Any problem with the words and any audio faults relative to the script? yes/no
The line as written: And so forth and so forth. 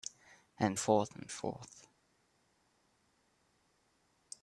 yes